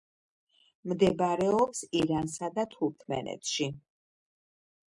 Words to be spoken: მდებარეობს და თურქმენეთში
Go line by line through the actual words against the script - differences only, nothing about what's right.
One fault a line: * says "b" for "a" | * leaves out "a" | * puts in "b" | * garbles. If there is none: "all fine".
* puts in "ირანსა"